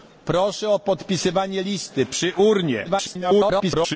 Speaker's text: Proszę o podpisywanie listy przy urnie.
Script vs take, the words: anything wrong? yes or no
yes